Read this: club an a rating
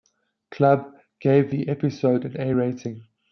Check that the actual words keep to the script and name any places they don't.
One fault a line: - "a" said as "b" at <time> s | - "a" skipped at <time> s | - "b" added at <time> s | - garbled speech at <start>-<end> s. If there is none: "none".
- "gave the episode" added at 1.2 s